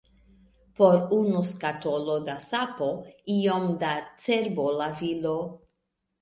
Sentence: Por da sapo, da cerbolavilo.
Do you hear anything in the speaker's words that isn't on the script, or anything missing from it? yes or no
yes